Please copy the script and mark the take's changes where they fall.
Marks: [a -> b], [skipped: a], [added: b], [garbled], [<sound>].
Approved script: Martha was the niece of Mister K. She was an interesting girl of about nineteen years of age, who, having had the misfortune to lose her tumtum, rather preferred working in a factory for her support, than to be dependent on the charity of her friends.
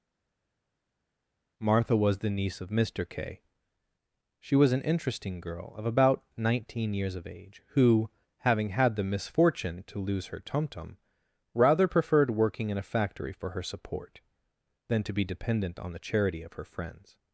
Martha was the niece of Mister K. She was an interesting girl of about nineteen years of age, who, having had the misfortune to lose her tumtum, rather preferred working in a factory for her support, than to be dependent on the charity of her friends.